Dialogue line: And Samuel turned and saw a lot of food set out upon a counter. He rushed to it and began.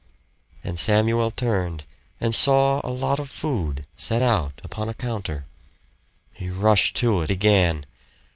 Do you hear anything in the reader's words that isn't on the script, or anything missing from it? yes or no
yes